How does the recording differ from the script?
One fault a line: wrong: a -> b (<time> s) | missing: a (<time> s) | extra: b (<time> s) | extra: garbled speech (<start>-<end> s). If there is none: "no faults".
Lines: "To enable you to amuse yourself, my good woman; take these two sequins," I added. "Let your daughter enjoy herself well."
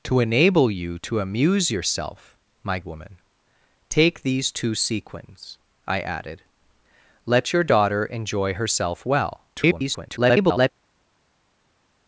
missing: good (2.8 s)
extra: garbled speech (9.5-10.7 s)